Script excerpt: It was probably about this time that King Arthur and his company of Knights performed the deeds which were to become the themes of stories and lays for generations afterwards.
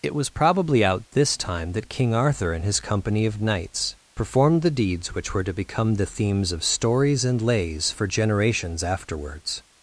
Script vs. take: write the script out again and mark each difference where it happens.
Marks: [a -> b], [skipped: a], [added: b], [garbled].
It was probably [about -> out] this time that King Arthur and his company of Knights performed the deeds which were to become the themes of stories and lays for generations afterwards.